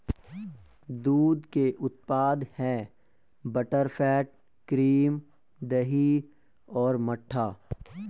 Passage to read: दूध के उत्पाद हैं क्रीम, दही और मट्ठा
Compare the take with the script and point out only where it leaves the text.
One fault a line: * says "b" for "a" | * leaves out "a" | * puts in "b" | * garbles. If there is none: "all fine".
* puts in "बटरफैट"